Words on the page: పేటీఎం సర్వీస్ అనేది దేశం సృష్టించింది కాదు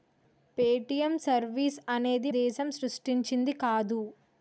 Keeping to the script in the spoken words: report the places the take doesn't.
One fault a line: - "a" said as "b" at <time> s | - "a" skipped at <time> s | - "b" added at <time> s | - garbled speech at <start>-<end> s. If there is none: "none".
none